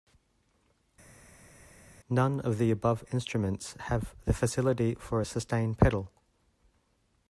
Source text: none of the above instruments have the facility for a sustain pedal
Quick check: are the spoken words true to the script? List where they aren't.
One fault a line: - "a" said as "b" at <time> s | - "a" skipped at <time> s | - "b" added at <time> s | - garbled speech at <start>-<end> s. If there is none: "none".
none